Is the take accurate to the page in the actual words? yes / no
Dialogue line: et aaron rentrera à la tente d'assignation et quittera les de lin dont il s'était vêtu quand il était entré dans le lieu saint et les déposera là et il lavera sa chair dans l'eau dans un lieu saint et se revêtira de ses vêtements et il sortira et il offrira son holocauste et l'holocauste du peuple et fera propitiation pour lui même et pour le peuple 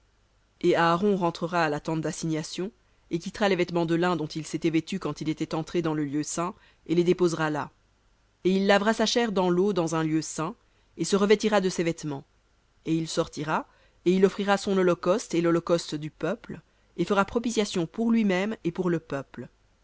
no